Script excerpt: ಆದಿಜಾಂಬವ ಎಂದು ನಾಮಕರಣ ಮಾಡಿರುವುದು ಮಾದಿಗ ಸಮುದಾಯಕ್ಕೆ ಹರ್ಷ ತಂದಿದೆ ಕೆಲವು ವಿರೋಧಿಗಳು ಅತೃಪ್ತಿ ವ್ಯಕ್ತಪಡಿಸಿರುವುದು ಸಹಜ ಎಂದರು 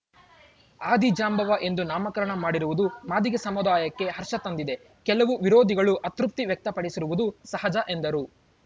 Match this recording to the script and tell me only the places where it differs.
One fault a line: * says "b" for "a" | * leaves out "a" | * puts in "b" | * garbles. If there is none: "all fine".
all fine